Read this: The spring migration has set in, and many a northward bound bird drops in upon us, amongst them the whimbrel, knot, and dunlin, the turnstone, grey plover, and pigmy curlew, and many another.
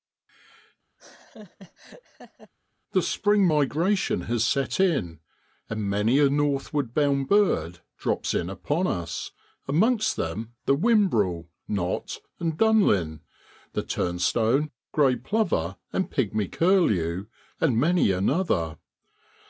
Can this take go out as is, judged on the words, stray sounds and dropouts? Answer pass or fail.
fail